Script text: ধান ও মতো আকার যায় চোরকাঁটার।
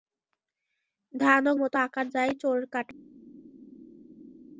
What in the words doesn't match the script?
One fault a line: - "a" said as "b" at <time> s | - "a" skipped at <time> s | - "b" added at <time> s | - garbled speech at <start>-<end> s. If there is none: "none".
none